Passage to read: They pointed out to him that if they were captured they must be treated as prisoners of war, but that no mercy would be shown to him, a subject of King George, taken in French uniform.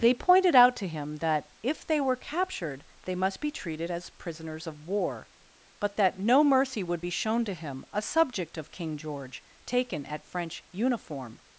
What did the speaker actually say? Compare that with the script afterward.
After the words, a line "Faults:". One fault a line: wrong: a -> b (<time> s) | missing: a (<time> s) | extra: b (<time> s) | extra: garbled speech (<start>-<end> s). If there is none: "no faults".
They pointed out to him that if they were captured they must be treated as prisoners of war, but that no mercy would be shown to him, a subject of King George, taken at French uniform.
Faults:
wrong: in -> at (10.1 s)